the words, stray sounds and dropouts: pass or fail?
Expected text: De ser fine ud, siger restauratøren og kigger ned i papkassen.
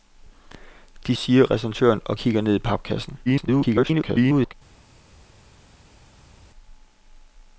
fail